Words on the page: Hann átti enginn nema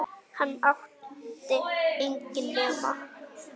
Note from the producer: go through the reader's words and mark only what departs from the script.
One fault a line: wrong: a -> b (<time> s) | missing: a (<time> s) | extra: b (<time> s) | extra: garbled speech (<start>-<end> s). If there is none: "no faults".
no faults